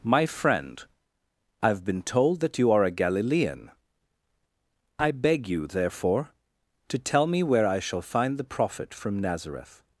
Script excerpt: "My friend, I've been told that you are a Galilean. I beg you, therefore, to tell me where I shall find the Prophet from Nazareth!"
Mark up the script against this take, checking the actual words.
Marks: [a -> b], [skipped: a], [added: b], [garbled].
"My friend, I've been told that you are a Galilean. I beg you, therefore, to tell me where I shall find the Prophet from Nazareth!"